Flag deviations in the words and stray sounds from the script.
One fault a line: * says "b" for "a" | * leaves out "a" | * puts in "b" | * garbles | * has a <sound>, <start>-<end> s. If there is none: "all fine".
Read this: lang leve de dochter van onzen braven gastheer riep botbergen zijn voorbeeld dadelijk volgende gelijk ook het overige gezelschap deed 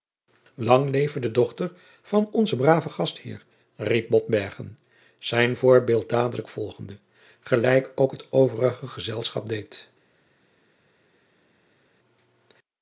all fine